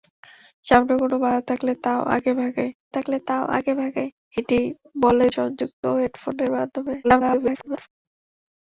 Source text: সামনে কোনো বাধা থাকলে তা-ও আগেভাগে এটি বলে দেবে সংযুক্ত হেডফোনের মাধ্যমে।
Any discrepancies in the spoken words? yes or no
yes